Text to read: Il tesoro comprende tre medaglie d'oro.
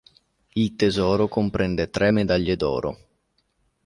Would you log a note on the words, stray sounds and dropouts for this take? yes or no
no